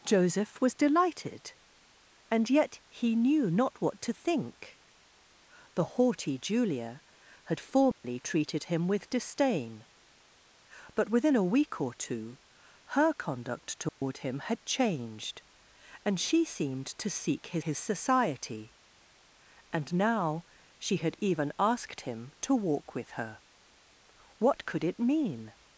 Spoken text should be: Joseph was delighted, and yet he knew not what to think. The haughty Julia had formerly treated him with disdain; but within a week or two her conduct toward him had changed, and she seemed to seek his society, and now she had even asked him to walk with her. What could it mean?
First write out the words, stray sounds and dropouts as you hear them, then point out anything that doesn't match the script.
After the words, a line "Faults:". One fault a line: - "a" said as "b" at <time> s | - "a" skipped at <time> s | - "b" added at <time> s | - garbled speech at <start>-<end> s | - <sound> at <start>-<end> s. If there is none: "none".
Joseph was delighted, and yet he knew not what to think. The haughty Julia had formerly treated him with disdain; but within a week or two her conduct toward him had changed, and she seemed to seek his his society, and now she had even asked him to walk with her. What could it mean?
Faults:
- dropout at 7.9-8.0 s
- dropout at 13.9-14.0 s
- "his" added at 17.6 s